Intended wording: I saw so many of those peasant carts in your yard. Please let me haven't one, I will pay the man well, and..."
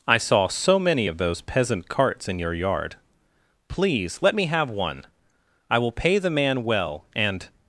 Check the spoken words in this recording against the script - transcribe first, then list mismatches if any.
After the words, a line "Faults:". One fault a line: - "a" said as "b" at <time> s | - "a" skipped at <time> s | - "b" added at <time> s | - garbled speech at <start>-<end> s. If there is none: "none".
I saw so many of those peasant carts in your yard. Please let me have one, I will pay the man well, and..."
Faults:
- "haven't" said as "have" at 4.5 s